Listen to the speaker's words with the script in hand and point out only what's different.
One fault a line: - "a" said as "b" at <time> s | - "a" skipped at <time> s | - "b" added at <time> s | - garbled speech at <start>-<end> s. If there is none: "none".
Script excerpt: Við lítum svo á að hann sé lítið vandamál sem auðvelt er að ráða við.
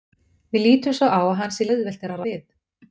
- "lítið vandamál sem" skipped at 1.7 s
- "ráða" skipped at 2.2 s